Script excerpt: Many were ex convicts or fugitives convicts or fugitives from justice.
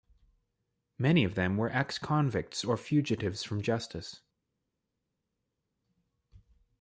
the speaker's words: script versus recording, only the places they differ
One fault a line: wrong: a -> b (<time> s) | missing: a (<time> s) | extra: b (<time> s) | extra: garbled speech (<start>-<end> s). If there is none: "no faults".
extra: of them (1.2 s)
missing: convicts or fugitives (3.4 s)